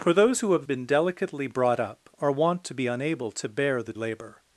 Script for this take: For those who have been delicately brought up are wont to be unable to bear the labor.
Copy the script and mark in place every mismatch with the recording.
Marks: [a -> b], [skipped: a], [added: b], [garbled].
For those who have been delicately brought up are wont to be unable to bear the labor.